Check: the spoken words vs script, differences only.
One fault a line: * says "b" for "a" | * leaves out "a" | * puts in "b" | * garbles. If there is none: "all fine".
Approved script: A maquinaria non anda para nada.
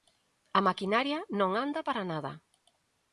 all fine